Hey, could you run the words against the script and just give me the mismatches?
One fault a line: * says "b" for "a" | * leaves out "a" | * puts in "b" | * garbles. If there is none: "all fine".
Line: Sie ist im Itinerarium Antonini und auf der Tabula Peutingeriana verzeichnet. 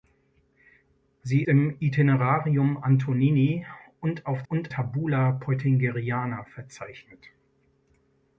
* leaves out "ist"
* says "und" for "der"